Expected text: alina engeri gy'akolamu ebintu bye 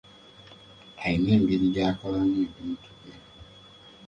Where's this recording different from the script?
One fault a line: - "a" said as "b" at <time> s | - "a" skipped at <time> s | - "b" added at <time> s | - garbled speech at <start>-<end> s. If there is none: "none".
none